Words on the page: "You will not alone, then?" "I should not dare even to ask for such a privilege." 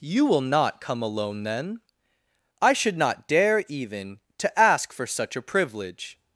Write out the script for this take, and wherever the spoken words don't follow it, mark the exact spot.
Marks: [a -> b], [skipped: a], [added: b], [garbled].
"You will not [added: come] alone, then?" "I should not dare even to ask for such a privilege."